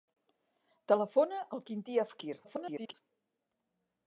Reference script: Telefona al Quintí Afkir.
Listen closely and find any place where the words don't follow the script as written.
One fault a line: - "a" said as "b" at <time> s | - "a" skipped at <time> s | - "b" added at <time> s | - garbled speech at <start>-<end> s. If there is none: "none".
- garbled speech at 2.4-2.9 s